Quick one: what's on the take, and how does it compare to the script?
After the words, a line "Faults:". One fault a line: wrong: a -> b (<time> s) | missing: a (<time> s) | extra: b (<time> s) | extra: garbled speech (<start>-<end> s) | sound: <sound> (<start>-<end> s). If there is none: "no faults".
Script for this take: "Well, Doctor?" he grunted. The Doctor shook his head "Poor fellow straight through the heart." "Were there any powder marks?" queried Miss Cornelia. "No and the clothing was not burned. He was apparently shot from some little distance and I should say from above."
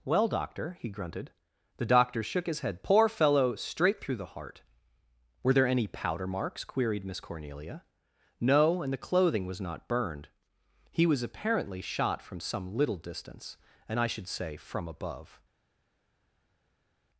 "Well, Doctor?" he grunted. The Doctor shook his head "Poor fellow straight through the heart." "Were there any powder marks?" queried Miss Cornelia. "No and the clothing was not burned. He was apparently shot from some little distance and I should say from above."
Faults:
no faults